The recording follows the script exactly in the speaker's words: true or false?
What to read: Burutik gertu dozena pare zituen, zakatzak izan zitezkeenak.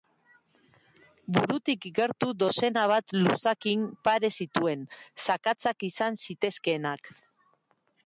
false